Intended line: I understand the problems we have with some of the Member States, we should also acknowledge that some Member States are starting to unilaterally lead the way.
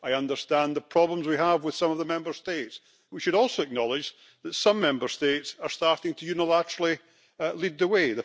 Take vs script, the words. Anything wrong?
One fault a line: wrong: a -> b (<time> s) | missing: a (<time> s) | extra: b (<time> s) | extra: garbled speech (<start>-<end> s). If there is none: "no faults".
no faults